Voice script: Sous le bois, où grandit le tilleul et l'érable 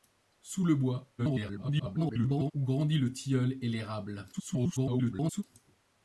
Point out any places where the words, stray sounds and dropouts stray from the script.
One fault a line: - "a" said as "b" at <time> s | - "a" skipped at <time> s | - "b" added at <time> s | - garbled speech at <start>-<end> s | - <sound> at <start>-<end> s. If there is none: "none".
- garbled speech at 1.2-2.5 s
- garbled speech at 4.3-5.4 s